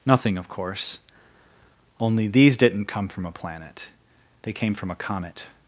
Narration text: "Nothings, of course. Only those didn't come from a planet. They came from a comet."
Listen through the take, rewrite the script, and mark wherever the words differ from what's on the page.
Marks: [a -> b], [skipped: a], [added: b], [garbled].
["Nothings, -> Nothing] of course. Only [those -> these] didn't come from a planet. They came from a comet."